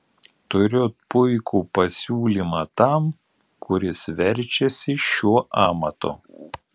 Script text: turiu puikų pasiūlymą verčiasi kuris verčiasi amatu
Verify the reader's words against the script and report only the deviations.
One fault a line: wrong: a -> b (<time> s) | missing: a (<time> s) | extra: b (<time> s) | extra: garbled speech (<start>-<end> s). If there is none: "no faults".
wrong: verčiasi -> tam (2.8 s)
extra: šiuo (5.1 s)